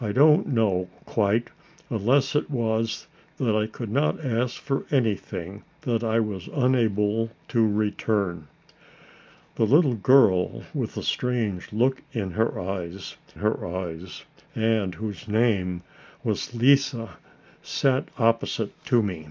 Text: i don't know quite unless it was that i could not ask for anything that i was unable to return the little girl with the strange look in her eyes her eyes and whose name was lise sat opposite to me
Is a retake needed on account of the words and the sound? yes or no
no